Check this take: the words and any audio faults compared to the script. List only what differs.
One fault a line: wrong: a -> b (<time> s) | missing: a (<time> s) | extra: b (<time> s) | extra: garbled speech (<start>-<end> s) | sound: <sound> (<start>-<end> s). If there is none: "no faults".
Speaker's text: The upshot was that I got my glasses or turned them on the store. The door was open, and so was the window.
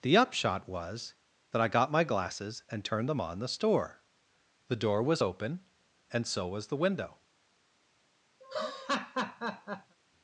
wrong: or -> and (2.7 s)
sound: laugh (8.4-10.0 s)